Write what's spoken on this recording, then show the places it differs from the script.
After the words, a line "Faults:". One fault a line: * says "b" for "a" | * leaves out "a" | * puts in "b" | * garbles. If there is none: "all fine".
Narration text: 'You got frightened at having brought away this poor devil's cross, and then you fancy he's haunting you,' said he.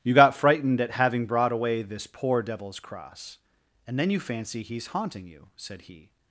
'You got frightened at having brought away this poor devil's cross, and then you fancy he's haunting you,' said he.
Faults:
all fine